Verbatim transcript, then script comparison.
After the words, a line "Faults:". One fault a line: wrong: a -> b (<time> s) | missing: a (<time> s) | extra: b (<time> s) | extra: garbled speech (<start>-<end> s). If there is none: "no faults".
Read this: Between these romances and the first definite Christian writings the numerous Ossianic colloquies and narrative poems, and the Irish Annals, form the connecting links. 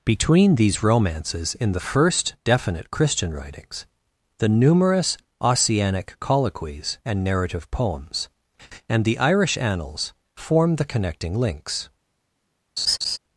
Between these romances in the first definite Christian writings the numerous Ossianic colloquies and narrative poems, and the Irish Annals, form the connecting links.
Faults:
wrong: and -> in (1.5 s)